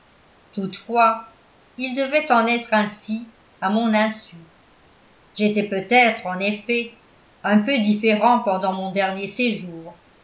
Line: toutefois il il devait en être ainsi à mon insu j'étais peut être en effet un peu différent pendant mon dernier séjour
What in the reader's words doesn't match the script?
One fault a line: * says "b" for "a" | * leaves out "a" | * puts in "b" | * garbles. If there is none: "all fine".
* leaves out "il"